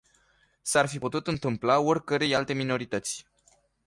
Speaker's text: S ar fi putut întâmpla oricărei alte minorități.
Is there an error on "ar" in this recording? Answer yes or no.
no